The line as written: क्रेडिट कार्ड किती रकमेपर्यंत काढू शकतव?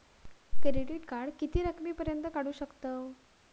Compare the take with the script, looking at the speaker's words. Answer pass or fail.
pass